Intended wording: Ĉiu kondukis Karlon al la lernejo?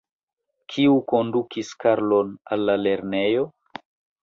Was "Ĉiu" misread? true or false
true